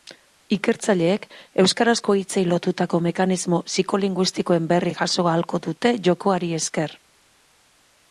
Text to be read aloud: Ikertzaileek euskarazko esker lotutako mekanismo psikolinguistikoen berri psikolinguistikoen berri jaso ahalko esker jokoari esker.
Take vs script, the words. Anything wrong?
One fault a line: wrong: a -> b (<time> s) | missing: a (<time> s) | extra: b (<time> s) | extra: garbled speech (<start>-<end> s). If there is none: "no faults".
wrong: esker -> hitzei (2.2 s)
missing: psikolinguistikoen berri (4.9 s)
wrong: esker -> dute (5.7 s)